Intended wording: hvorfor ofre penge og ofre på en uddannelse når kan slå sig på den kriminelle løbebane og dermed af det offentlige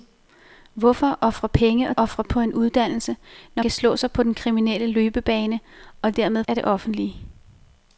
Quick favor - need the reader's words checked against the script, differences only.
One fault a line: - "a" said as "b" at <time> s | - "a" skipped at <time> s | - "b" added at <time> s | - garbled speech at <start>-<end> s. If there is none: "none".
none